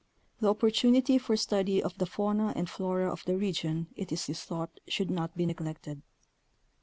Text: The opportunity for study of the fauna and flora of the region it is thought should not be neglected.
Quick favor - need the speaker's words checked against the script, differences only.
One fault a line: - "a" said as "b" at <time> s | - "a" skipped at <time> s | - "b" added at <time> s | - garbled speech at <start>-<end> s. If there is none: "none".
- "is" added at 4.3 s